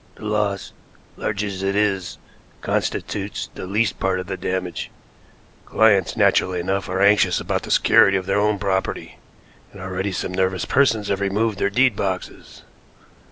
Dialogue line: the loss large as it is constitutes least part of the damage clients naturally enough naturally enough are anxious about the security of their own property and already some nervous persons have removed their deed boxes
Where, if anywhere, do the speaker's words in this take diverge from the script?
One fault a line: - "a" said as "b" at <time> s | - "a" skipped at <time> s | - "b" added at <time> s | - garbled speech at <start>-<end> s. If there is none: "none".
- "the" added at 3.5 s
- "naturally enough" skipped at 6.9 s